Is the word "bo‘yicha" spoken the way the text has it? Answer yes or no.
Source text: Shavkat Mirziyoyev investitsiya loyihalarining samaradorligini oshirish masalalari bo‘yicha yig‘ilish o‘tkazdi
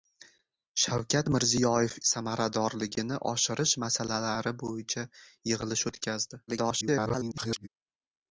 yes